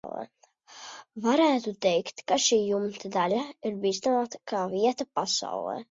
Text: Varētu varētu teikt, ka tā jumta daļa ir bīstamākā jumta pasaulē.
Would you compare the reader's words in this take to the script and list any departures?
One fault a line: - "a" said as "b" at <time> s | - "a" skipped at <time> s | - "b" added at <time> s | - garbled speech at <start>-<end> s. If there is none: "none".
- "varētu" skipped at 1.7 s
- "tā" said as "šī" at 2.5 s
- "jumta" said as "vieta" at 4.7 s